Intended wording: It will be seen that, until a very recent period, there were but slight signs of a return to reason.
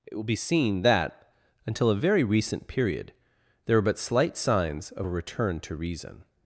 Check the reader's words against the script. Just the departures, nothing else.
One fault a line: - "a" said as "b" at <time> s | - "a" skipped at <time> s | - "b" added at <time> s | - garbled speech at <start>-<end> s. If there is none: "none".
none